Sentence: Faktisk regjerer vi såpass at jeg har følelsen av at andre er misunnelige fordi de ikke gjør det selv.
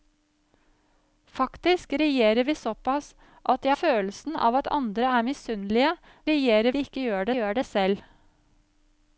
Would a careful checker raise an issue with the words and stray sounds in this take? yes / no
yes